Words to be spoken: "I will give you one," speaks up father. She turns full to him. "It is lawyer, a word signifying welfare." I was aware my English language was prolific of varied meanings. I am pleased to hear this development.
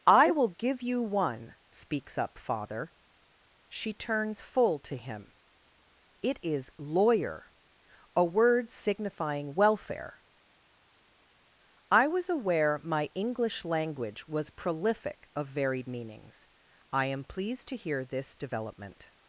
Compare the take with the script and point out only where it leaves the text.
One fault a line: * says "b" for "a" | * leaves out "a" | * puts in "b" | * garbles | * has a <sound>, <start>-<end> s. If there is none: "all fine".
all fine